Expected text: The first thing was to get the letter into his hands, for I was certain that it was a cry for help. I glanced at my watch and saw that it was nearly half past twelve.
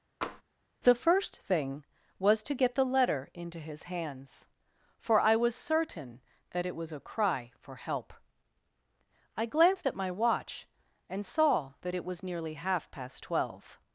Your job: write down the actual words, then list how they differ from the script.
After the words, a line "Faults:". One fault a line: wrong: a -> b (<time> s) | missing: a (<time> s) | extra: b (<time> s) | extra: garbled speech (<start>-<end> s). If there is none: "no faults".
The first thing was to get the letter into his hands, for I was certain that it was a cry for help. I glanced at my watch and saw that it was nearly half past twelve.
Faults:
no faults